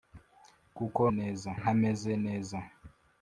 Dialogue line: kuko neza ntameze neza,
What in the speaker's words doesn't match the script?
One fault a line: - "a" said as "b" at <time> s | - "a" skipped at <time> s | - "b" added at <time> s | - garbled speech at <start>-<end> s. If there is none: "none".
none